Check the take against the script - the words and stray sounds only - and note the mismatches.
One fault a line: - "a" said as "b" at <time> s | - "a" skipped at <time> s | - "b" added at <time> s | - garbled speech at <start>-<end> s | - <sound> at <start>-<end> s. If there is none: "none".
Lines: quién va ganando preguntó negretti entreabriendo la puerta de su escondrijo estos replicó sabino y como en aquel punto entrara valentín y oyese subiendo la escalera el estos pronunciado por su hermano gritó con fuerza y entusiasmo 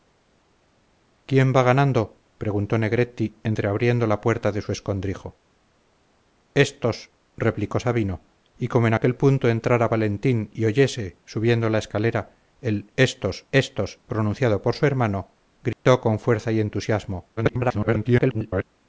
- "estos" added at 13.5 s
- dropout at 15.7-15.9 s
- garbled speech at 17.4-18.6 s